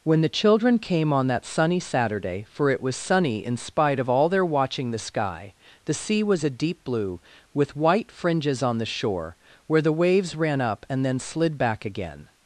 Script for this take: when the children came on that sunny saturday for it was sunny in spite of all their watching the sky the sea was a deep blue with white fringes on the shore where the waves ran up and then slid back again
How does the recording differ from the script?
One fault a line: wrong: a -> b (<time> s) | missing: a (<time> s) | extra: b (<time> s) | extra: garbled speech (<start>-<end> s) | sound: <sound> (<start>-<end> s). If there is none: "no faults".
no faults